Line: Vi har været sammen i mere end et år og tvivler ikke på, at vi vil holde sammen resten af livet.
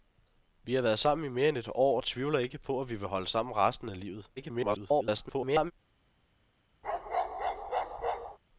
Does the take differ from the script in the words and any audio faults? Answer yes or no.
yes